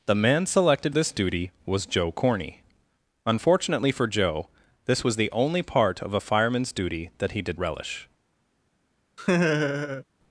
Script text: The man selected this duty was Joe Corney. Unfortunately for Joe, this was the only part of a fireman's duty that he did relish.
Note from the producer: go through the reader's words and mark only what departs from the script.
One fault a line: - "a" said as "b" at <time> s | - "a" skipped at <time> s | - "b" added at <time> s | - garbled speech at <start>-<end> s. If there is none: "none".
none